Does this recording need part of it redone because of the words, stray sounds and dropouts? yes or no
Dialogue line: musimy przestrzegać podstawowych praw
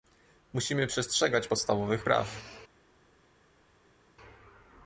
no